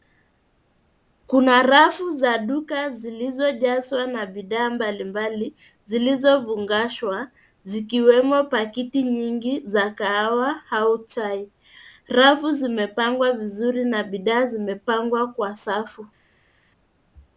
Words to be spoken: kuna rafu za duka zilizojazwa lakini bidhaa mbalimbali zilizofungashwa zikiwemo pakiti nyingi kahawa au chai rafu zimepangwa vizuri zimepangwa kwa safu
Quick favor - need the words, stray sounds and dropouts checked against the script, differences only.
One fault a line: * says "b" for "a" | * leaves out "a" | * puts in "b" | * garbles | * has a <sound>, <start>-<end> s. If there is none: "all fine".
* says "na" for "lakini"
* puts in "za"
* puts in "na bidhaa"